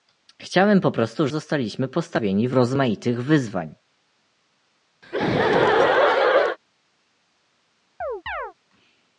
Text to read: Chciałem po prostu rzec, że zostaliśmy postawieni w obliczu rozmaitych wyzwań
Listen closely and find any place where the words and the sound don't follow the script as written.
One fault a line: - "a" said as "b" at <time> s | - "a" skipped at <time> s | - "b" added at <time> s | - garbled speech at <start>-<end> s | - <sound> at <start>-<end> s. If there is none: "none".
- "rzec że" skipped at 1.3 s
- "obliczu" skipped at 2.6 s
- laugh at 5.0-6.6 s
- chirp at 8.0-8.5 s